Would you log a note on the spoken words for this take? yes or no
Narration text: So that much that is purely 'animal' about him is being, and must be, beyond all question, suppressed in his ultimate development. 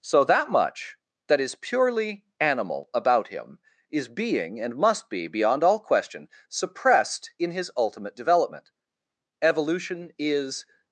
yes